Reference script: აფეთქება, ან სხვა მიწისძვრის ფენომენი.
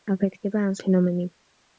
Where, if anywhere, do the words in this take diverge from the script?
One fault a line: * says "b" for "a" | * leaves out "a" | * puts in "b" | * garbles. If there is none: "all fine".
* leaves out "სხვა მიწისძვრის"